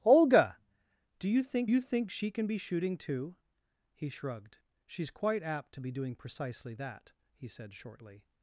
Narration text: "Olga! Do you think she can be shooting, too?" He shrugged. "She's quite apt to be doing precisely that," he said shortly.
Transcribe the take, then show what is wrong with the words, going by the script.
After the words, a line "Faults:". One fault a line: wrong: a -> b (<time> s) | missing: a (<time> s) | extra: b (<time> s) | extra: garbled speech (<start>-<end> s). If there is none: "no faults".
"Olga! Do you think you think she can be shooting, too?" He shrugged. "She's quite apt to be doing precisely that," he said shortly.
Faults:
extra: you think (1.7 s)